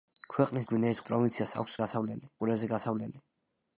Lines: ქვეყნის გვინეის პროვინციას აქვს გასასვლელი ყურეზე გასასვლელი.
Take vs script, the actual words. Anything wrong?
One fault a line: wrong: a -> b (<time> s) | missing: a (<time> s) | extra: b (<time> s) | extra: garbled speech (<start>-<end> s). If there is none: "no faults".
no faults